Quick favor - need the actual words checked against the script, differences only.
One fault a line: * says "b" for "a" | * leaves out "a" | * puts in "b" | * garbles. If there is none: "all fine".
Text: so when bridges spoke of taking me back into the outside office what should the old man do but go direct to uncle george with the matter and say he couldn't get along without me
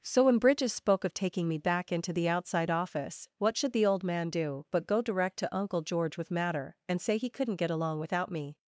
* leaves out "the"